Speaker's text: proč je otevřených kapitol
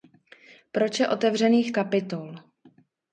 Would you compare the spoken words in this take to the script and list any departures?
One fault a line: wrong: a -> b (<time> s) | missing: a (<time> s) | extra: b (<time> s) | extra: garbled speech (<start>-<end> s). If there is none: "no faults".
no faults